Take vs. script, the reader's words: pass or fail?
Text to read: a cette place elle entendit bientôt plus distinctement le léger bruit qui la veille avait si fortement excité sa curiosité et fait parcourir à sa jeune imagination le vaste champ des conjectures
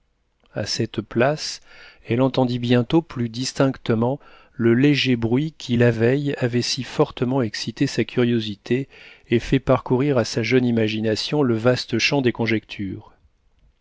pass